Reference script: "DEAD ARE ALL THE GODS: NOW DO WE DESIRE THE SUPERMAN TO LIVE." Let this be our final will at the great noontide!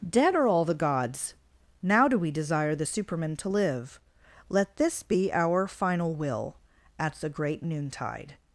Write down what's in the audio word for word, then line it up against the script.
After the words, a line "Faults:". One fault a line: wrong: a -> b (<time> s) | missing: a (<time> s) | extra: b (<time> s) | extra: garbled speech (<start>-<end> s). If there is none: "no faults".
"DEAD ARE ALL THE GODS: NOW DO WE DESIRE THE SUPERMAN TO LIVE." Let this be our final will at the great noontide!
Faults:
no faults